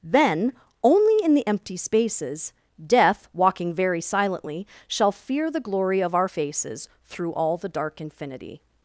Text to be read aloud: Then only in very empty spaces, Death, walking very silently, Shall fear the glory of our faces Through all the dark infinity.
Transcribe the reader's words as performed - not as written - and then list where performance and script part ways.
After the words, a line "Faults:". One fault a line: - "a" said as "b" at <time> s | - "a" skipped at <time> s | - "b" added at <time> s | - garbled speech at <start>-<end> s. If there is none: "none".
Then only in the empty spaces, Death, walking very silently, Shall fear the glory of our faces Through all the dark infinity.
Faults:
- "very" said as "the" at 1.3 s